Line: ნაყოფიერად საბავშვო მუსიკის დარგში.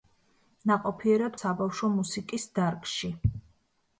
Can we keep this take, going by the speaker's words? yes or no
yes